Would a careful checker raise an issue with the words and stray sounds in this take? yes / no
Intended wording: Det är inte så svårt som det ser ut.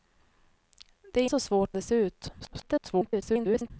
yes